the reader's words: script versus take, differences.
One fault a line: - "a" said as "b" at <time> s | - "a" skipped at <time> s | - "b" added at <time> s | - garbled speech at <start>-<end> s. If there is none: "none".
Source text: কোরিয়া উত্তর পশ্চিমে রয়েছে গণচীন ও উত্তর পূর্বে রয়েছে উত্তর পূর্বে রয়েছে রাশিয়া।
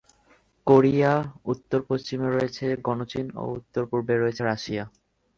- "উত্তর পূর্বে রয়েছে" skipped at 4.4 s